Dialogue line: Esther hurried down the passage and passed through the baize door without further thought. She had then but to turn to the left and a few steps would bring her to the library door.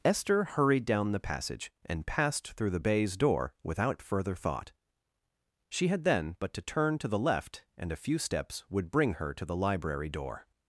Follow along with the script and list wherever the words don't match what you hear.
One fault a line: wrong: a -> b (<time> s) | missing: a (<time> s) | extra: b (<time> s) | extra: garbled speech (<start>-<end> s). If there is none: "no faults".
no faults